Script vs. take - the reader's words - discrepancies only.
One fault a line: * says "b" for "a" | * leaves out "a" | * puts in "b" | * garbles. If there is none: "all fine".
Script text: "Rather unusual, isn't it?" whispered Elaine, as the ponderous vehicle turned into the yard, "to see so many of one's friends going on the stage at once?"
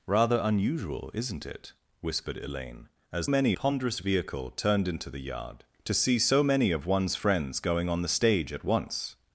* says "many" for "the"